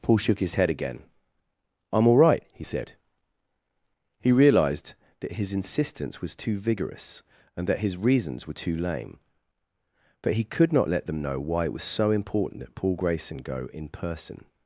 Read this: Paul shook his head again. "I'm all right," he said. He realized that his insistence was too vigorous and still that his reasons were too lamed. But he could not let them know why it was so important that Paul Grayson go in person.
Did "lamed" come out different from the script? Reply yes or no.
yes